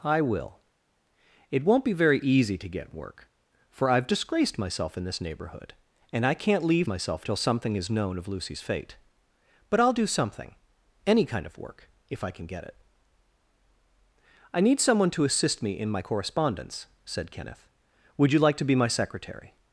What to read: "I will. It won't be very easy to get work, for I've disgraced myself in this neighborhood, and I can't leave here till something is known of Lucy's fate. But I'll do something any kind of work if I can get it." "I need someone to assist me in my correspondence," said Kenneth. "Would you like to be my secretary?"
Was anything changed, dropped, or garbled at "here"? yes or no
yes